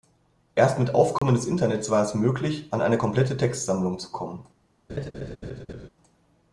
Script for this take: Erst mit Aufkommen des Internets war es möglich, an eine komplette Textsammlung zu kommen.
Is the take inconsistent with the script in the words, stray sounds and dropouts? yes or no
yes